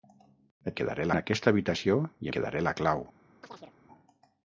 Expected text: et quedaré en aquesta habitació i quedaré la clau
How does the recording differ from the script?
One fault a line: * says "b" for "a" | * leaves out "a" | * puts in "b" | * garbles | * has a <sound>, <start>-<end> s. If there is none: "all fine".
* has a chirp, 3.4-3.7 s